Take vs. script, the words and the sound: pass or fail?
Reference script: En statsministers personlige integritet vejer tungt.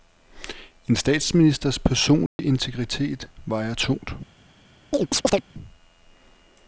fail